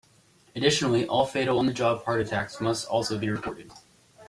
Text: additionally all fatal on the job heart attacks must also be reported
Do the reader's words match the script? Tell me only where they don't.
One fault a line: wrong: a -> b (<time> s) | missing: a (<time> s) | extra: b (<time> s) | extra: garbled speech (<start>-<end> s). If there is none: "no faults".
no faults